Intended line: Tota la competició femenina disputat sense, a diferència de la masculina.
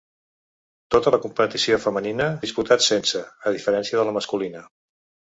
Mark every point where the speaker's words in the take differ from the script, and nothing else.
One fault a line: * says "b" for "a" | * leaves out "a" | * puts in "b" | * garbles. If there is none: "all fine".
all fine